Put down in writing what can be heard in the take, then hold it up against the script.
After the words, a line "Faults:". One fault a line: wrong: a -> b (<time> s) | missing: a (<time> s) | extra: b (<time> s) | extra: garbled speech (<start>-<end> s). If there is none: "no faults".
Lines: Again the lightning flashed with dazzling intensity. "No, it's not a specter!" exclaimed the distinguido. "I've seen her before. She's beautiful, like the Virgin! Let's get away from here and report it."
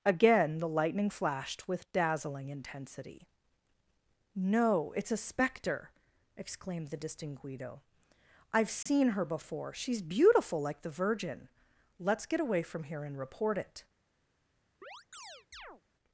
Again the lightning flashed with dazzling intensity. "No, it's a specter!" exclaimed the distinguido. "I've seen her before. She's beautiful, like the Virgin! Let's get away from here and report it."
Faults:
missing: not (5.1 s)